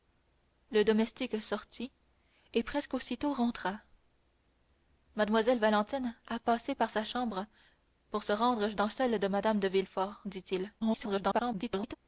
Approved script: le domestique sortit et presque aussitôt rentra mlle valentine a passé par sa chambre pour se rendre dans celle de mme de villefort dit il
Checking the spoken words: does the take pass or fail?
fail